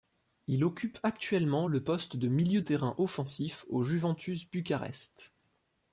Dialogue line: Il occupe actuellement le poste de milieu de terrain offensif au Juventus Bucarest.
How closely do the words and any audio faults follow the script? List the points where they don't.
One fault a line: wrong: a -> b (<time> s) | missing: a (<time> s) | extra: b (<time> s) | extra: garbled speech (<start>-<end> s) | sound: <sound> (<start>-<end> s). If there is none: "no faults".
missing: de (2.6 s)